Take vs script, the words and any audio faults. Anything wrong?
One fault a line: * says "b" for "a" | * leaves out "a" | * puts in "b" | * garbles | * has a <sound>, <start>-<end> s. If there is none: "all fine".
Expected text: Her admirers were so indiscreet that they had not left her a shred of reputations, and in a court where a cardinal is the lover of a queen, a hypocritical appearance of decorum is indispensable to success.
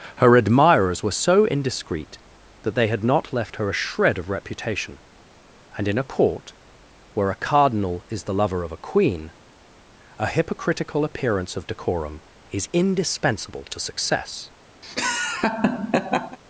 * says "reputation" for "reputations"
* has a laugh, 14.8-16.4 s